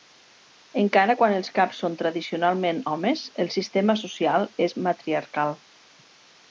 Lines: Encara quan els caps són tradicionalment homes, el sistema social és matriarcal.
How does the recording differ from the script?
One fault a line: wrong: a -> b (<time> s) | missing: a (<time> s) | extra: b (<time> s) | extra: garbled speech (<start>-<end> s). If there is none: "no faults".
no faults